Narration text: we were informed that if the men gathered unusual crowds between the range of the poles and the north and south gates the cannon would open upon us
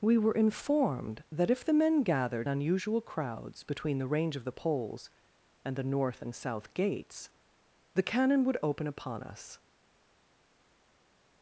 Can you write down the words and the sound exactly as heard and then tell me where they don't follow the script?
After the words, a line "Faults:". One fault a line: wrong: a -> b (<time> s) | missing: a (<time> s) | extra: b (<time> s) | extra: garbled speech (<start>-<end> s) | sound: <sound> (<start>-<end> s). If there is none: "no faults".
we were informed that if the men gathered unusual crowds between the range of the poles and the north and south gates the cannon would open upon us
Faults:
no faults